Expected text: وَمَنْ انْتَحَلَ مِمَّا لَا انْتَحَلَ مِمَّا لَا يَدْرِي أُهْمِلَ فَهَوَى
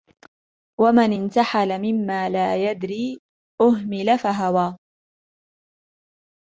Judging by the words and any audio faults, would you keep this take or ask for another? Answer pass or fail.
fail